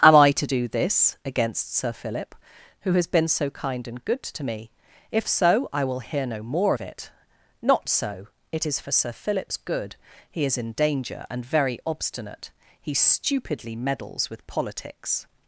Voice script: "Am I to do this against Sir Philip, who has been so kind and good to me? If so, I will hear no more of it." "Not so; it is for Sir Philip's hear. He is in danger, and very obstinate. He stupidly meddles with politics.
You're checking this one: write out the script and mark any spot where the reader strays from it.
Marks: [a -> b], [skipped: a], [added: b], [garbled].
"Am I to do this against Sir Philip, who has been so kind and good to me? If so, I will hear no more of it." "Not so; it is for Sir Philip's [hear. -> good] He is in danger, and very obstinate. He stupidly meddles with politics.